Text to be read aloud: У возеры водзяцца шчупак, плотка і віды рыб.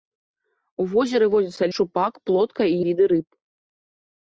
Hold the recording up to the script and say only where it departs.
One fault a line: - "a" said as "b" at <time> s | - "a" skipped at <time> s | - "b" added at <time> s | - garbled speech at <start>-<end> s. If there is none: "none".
none